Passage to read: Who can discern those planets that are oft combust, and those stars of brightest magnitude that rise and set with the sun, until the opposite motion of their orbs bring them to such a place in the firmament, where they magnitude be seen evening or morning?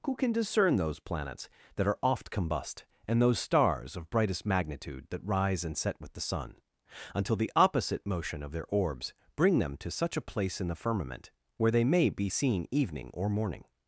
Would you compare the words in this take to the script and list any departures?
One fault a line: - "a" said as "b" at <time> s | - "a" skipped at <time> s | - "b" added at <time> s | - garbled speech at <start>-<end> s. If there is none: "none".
- "magnitude" said as "may" at 11.8 s